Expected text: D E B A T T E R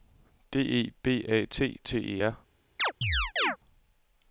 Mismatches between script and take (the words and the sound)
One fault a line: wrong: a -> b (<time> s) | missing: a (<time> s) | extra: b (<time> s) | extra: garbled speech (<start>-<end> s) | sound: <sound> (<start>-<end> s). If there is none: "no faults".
sound: chirp (2.8-3.6 s)